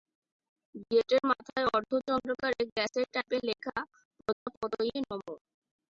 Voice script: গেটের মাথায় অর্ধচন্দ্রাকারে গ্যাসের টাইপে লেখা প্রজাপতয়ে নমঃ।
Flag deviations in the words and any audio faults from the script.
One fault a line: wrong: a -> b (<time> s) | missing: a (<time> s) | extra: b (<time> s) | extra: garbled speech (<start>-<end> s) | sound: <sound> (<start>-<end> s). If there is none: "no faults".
sound: dropout (4.3-4.5 s)